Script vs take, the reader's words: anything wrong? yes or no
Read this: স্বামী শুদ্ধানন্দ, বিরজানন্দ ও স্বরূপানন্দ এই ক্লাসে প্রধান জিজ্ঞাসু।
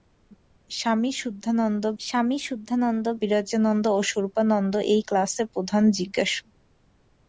yes